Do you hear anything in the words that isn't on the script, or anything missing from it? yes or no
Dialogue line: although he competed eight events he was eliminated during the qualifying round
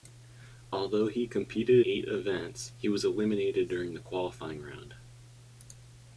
no